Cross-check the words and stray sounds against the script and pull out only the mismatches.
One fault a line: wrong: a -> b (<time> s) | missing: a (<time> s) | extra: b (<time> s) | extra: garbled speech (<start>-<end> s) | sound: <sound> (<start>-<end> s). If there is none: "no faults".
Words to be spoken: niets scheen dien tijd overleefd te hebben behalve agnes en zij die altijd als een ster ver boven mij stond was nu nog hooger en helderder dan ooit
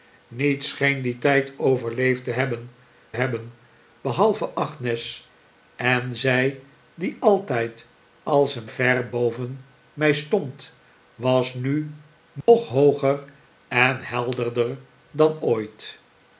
extra: hebben (3.1 s)
missing: ster (8.7 s)
sound: dropout (12.4-12.5 s)